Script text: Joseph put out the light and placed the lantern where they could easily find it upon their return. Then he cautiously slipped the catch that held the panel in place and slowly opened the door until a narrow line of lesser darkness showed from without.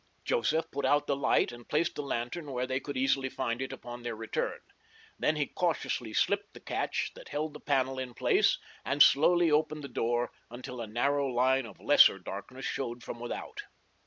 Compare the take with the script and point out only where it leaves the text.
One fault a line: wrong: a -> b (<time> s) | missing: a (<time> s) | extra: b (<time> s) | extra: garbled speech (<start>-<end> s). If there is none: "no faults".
no faults